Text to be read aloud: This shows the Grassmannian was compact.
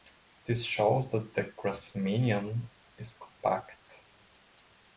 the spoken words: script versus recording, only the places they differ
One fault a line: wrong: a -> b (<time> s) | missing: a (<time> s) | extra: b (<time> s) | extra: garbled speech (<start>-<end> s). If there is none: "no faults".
extra: that (1.1 s)
wrong: was -> is (3.0 s)